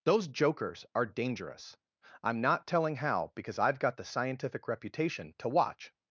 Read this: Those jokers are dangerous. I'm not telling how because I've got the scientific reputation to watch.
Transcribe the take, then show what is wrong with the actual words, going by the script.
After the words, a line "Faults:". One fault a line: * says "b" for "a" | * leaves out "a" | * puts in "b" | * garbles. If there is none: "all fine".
Those jokers are dangerous. I'm not telling how because I've got the scientific reputation to watch.
Faults:
all fine